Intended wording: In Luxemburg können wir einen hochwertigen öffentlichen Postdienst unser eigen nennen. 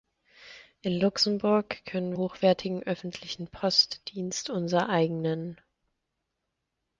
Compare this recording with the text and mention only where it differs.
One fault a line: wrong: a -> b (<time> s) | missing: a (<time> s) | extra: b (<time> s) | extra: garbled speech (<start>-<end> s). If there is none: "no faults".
missing: wir einen (2.1 s)